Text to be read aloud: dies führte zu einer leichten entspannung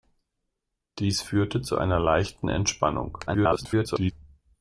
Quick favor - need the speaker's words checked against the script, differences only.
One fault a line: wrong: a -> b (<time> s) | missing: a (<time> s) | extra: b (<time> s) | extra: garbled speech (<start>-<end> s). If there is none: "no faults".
extra: garbled speech (3.3-4.1 s)